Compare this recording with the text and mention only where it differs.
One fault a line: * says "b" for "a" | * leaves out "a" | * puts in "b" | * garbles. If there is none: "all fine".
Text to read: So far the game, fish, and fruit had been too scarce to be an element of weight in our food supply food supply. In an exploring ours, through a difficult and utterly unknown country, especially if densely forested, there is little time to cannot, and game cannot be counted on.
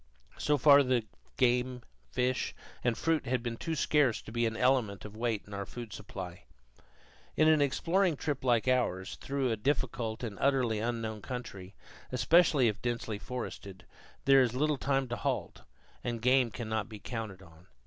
* leaves out "food supply"
* puts in "trip like"
* says "halt" for "cannot"